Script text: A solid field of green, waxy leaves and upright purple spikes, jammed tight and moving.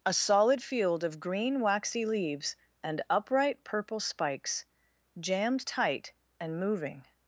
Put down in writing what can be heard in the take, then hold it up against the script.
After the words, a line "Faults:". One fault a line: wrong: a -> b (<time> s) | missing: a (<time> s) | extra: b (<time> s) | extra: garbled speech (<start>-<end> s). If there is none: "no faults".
A solid field of green, waxy leaves and upright purple spikes, jammed tight and moving.
Faults:
no faults